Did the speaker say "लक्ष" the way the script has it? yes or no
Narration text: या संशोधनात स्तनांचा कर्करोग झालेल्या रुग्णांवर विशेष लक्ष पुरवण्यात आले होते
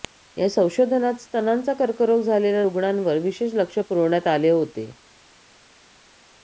yes